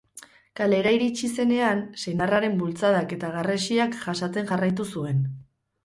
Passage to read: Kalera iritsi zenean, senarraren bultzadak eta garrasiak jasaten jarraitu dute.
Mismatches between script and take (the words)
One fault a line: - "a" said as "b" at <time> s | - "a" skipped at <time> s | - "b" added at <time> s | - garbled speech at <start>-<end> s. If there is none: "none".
- "dute" said as "zuen" at 5.0 s